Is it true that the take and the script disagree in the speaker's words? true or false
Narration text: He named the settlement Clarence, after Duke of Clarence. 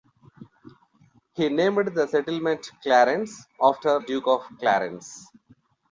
false